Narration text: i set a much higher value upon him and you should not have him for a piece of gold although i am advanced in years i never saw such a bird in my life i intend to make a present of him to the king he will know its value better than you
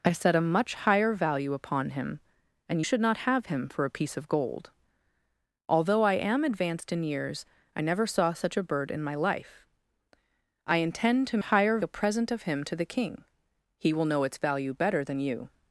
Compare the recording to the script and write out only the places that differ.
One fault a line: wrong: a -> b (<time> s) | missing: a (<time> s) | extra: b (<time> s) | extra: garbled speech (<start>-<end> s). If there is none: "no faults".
missing: you (2.8 s)
wrong: make -> higher (11.4 s)